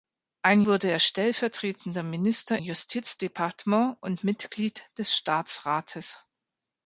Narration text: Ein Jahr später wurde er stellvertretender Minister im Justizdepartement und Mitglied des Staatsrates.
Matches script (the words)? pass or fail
fail